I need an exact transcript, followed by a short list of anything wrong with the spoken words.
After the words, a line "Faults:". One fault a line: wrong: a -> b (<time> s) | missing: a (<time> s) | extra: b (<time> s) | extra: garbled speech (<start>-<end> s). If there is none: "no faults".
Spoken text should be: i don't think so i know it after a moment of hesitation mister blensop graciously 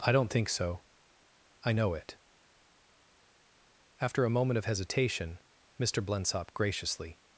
i don't think so i know it after a moment of hesitation mister blensop graciously
Faults:
no faults